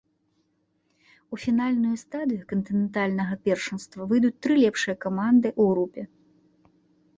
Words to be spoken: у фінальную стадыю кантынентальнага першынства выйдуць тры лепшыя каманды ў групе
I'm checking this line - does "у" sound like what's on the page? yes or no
yes